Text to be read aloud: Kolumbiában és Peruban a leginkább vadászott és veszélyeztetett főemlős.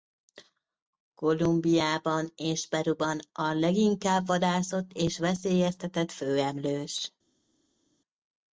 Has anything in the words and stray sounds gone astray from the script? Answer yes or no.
no